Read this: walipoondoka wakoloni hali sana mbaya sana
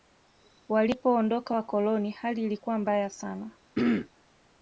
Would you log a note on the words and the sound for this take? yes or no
yes